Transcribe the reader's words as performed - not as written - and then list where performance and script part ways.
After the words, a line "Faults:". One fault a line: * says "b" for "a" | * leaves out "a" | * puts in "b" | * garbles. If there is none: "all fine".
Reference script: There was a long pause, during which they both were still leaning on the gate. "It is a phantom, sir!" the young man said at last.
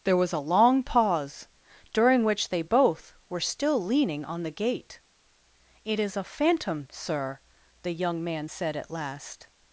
There was a long pause, during which they both were still leaning on the gate. "It is a phantom, sir!" the young man said at last.
Faults:
all fine